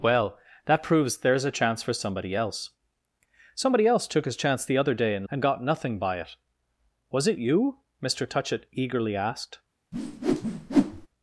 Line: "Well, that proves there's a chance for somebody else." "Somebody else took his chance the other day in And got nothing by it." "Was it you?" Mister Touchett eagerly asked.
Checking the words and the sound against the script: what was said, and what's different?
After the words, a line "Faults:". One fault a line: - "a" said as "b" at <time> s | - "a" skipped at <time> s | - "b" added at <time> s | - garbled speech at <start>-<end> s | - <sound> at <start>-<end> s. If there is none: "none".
"Well, that proves there's a chance for somebody else." "Somebody else took his chance the other day in And got nothing by it." "Was it you?" Mister Touchett eagerly asked.
Faults:
- whoosh at 9.9-11.1 s